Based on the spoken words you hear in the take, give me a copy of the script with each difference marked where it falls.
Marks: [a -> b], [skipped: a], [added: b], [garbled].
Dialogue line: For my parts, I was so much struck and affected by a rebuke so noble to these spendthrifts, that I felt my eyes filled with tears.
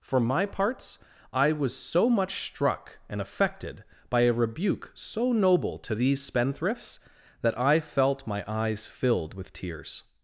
For my parts, I was so much struck and affected by a rebuke so noble to these spendthrifts, that I felt my eyes filled with tears.